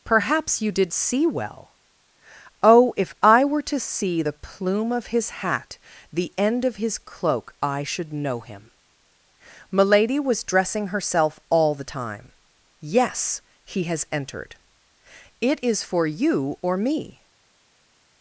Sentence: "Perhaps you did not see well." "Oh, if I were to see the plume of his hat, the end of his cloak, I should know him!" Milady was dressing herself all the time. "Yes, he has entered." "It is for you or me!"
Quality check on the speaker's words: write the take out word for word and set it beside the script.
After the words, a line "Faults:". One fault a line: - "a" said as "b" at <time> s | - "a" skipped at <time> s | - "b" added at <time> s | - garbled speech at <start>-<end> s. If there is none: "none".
"Perhaps you did see well." "Oh, if I were to see the plume of his hat, the end of his cloak, I should know him!" Milady was dressing herself all the time. "Yes, he has entered." "It is for you or me!"
Faults:
- "not" skipped at 0.9 s